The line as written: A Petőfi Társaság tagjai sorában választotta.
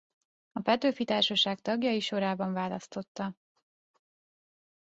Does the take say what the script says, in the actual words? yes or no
yes